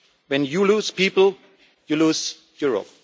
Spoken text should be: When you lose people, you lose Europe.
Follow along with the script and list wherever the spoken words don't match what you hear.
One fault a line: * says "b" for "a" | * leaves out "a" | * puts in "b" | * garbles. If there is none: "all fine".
all fine